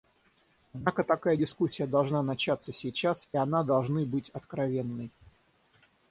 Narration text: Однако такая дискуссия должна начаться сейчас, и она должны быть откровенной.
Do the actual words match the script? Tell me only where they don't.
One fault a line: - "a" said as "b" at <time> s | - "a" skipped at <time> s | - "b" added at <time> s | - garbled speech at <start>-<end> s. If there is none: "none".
none